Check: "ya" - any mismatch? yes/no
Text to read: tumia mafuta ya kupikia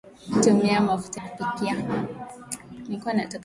yes